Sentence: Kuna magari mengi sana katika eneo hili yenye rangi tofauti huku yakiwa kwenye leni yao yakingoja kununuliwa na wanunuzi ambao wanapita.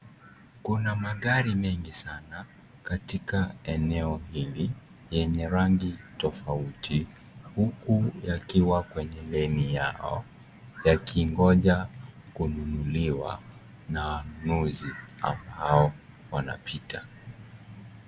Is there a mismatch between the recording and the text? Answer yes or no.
no